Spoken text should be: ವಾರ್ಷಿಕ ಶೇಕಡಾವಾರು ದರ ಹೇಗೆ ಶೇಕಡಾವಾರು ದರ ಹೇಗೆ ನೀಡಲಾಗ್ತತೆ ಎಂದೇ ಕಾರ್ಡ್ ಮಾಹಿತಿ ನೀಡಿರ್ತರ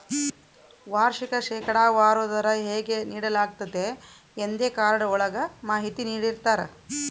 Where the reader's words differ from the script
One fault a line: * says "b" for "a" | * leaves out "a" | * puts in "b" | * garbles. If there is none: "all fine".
* leaves out "ಶೇಕಡಾವಾರು ದರ ಹೇಗೆ"
* puts in "ಒಳಗ"